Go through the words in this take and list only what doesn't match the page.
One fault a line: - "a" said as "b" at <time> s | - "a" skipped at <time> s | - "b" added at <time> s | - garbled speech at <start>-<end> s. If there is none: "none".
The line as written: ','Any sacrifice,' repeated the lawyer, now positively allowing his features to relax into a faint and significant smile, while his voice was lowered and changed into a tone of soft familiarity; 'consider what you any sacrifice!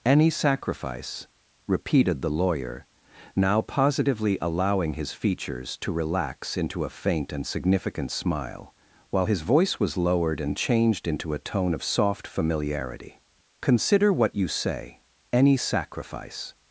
- "say" added at 14.5 s